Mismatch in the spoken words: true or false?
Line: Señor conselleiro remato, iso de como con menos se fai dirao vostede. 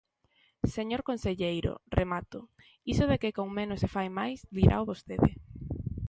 true